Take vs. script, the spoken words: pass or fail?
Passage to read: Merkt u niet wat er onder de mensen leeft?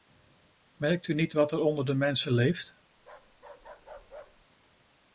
pass